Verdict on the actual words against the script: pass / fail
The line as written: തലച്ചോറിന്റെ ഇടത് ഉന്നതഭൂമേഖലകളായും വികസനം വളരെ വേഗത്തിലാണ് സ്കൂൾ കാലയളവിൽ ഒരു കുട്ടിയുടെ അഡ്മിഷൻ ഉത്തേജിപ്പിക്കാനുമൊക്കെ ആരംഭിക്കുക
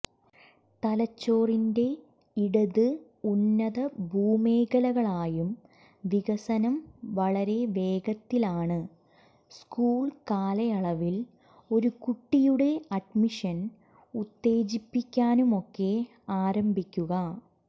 pass